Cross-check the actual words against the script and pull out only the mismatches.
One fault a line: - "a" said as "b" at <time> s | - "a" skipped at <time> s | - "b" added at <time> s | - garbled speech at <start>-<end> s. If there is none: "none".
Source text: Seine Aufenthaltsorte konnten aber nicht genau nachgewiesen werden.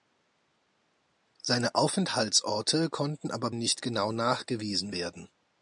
none